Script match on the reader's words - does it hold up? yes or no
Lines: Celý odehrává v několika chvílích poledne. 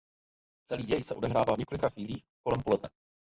no